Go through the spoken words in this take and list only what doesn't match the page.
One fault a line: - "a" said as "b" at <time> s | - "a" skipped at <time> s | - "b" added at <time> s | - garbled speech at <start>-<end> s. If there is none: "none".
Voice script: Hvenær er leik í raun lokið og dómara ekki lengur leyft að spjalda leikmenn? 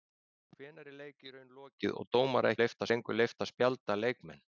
- "ekki" said as "leyft" at 2.6 s